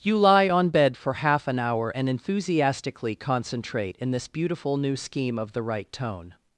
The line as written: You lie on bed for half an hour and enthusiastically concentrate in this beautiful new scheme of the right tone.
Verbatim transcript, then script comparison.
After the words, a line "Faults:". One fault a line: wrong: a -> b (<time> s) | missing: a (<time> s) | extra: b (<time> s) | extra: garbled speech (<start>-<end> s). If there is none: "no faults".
You lie on bed for half an hour and enthusiastically concentrate in this beautiful new scheme of the right tone.
Faults:
no faults